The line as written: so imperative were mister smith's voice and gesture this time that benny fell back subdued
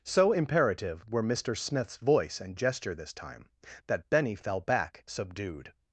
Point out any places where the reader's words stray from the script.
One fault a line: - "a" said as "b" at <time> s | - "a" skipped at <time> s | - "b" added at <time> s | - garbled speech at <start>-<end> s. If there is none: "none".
none